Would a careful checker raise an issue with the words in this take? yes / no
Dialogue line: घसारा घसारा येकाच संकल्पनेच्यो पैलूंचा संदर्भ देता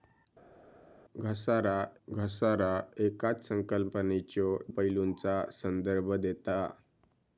no